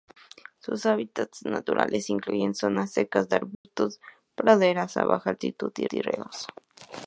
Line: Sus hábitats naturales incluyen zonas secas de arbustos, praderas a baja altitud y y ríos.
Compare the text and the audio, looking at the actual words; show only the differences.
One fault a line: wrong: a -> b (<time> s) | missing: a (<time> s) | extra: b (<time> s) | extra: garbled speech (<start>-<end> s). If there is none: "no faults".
no faults